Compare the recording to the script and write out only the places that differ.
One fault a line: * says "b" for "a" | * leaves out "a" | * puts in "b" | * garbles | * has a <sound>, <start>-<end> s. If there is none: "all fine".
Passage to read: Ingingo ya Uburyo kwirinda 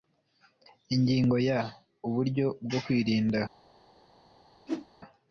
* puts in "bwo"
* has a whoosh, 4.7-4.9 s